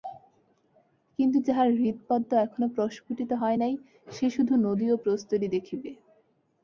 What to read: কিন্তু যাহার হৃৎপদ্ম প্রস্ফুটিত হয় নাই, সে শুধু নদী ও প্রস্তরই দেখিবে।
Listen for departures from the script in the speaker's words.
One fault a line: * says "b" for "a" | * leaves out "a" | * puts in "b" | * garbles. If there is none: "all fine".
* puts in "এখনও"